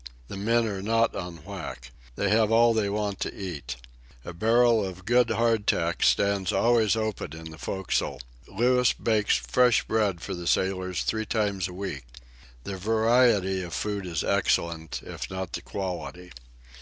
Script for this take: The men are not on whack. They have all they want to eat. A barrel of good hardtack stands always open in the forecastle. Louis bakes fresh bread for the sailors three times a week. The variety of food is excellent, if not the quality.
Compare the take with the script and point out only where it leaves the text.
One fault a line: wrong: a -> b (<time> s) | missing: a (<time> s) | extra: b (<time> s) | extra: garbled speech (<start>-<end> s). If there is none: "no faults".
no faults